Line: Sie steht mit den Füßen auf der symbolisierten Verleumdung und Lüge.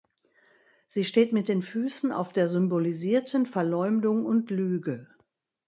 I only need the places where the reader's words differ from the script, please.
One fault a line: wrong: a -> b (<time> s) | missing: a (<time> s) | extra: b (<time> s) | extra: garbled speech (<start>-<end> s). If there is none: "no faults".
no faults